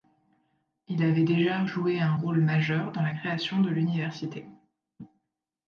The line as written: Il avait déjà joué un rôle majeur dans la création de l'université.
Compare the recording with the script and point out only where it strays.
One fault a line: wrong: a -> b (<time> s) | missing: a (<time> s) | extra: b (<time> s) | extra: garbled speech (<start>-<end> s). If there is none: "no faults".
no faults